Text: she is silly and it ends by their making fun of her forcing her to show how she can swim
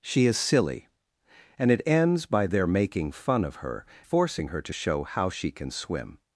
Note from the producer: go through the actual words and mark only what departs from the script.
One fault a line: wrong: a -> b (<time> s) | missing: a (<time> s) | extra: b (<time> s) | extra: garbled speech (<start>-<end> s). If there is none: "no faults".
no faults